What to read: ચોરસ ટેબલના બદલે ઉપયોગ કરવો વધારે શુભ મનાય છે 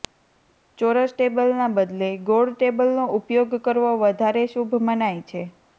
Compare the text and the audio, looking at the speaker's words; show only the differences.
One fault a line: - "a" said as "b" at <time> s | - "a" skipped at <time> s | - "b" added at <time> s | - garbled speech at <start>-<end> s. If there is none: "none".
- "ગોળ ટેબલનો" added at 2.2 s